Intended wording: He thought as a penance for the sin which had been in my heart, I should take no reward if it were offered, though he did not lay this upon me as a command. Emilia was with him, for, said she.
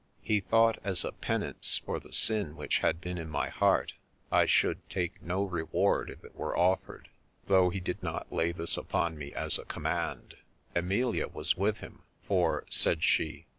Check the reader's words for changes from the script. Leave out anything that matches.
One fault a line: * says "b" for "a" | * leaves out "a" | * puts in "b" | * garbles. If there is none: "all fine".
all fine